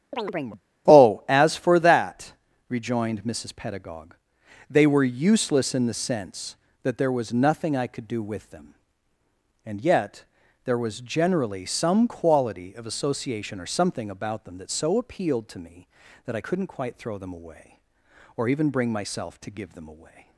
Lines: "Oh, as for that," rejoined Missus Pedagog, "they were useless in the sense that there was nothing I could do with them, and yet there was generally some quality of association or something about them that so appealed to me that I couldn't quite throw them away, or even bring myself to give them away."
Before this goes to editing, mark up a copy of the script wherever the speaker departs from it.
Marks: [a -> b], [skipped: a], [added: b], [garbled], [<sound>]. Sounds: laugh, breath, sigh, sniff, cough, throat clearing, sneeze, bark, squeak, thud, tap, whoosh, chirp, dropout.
[chirp] "Oh, as for that," rejoined Missus Pedagog, "they were useless in the sense that there was nothing I could do with them, and yet there was generally some quality of association or something about them that so appealed to me that I couldn't quite throw them away, or even bring myself to give them away."